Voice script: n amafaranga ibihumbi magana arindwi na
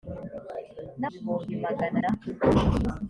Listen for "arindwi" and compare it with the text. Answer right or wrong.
wrong